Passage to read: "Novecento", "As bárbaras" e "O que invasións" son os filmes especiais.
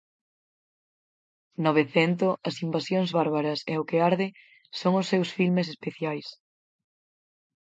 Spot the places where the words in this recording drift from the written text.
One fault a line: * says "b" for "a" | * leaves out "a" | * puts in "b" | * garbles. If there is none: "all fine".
* puts in "invasións"
* says "arde" for "invasións"
* puts in "seus"